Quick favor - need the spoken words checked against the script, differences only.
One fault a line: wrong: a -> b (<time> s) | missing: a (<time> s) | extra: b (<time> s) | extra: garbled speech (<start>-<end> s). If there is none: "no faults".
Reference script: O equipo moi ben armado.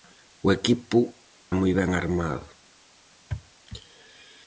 no faults